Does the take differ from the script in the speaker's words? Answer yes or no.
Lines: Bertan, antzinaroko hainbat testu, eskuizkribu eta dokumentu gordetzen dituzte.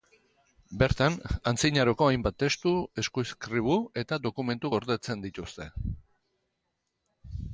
no